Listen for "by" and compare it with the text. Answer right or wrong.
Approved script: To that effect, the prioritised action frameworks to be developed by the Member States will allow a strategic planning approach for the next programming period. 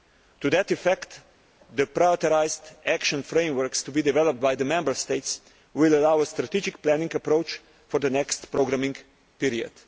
right